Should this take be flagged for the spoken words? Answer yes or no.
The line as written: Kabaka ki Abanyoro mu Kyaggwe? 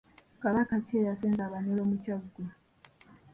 yes